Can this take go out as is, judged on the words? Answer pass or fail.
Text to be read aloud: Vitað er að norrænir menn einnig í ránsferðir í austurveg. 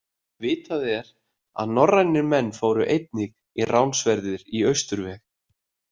fail